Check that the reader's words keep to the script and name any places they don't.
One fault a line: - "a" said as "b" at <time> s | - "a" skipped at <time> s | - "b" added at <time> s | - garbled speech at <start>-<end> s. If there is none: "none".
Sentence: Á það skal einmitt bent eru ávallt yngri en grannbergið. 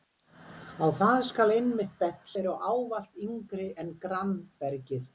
none